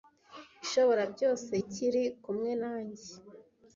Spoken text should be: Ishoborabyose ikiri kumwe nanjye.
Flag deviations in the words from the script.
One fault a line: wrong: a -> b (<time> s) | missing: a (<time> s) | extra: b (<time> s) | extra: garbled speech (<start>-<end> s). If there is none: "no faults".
no faults